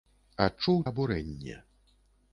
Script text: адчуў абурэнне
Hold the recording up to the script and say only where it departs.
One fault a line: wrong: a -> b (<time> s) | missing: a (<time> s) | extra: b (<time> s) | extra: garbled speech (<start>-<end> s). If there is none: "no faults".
no faults